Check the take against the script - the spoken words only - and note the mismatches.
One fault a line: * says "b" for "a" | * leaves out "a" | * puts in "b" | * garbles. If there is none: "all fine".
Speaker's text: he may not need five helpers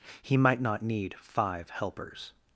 * says "might" for "may"